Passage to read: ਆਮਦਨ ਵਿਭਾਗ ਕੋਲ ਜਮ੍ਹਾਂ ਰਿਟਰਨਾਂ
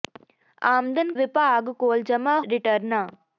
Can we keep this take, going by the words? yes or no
yes